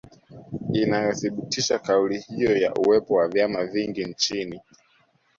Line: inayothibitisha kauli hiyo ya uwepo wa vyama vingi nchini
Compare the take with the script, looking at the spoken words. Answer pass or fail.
pass